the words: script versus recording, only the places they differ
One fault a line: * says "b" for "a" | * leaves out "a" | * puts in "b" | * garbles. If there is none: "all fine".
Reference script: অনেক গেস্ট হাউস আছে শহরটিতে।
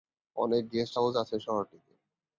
all fine